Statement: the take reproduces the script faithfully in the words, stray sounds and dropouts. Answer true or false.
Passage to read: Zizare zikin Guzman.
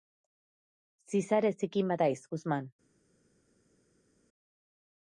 false